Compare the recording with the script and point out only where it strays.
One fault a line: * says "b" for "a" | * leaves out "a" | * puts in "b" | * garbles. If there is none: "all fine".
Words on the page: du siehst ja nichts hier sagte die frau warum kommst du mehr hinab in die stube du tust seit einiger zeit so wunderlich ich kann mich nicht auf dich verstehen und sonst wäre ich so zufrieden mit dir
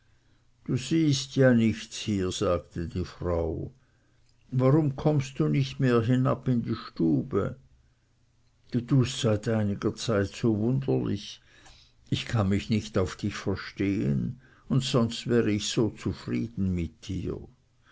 * puts in "nicht"